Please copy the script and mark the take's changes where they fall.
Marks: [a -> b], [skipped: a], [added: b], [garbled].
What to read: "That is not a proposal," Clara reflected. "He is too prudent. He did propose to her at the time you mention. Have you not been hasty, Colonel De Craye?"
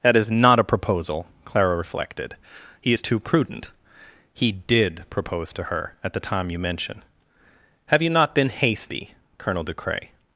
"That is not a proposal," Clara reflected. "He is too prudent. He did propose to her at the time you mention. Have you not been hasty, Colonel De Craye?"